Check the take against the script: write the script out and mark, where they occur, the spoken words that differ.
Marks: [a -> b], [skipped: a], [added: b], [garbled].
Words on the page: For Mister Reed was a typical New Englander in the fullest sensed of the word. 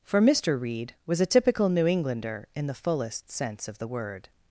For Mister Reed was a typical New Englander in the fullest [sensed -> sense] of the word.